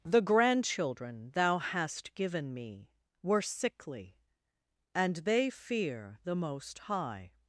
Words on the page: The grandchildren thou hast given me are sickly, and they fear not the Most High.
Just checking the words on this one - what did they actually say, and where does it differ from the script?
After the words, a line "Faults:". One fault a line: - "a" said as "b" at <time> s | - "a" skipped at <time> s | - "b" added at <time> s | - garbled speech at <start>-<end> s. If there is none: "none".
The grandchildren thou hast given me were sickly, and they fear the Most High.
Faults:
- "are" said as "were" at 3.2 s
- "not" skipped at 6.2 s